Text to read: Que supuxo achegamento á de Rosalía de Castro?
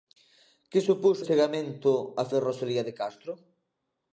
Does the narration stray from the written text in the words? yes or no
no